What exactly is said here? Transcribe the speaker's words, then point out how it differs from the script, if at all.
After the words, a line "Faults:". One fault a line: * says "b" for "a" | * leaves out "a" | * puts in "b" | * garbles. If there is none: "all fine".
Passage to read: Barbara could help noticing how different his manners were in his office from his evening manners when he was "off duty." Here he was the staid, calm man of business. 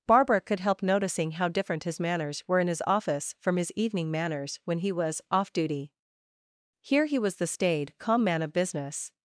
Barbara could help noticing how different his manners were in his office from his evening manners when he was "off duty." Here he was the staid, calm man of business.
Faults:
all fine